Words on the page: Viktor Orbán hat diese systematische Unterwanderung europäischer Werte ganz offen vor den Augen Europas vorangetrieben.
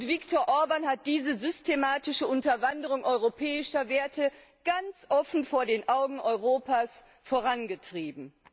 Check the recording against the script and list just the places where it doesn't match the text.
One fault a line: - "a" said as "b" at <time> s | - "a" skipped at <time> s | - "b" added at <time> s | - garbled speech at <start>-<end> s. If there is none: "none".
none